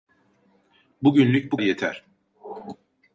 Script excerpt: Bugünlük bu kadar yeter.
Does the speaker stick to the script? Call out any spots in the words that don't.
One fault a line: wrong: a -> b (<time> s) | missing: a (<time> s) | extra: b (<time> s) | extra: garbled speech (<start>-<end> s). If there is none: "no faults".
missing: kadar (1.6 s)